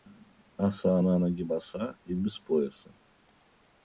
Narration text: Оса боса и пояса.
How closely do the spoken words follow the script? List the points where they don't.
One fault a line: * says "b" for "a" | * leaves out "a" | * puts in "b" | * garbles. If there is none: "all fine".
* puts in "на ноги"
* puts in "без"